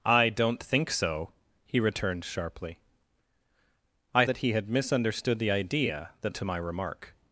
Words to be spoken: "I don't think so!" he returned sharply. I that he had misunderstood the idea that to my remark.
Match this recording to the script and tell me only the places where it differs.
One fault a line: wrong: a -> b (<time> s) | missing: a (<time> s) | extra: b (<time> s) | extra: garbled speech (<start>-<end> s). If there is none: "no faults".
no faults